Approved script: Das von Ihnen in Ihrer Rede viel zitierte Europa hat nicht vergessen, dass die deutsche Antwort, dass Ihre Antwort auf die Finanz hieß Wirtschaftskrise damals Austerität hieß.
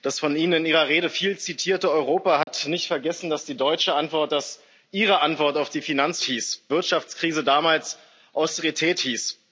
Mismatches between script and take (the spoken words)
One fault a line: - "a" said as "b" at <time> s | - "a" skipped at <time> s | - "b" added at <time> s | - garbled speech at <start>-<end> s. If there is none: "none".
none